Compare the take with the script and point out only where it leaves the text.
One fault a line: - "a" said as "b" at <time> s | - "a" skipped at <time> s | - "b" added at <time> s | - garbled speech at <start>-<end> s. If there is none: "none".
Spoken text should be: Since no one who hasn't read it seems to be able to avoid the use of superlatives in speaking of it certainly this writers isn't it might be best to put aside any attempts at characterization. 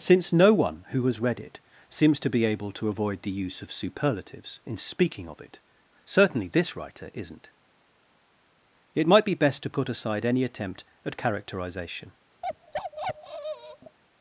- "hasn't" said as "has" at 1.1 s
- "writers" said as "writer" at 6.7 s
- "attempts" said as "attempt" at 10.5 s